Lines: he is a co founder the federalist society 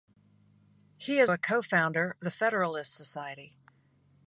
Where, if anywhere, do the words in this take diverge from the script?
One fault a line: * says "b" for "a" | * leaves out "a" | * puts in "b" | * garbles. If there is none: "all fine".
all fine